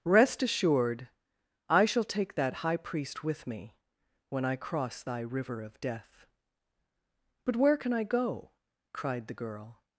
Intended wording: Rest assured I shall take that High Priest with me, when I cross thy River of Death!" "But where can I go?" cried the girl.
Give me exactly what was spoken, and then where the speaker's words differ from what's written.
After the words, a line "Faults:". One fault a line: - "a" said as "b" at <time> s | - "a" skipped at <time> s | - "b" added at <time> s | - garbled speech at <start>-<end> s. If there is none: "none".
Rest assured I shall take that High Priest with me, when I cross thy River of Death!" "But where can I go?" cried the girl.
Faults:
none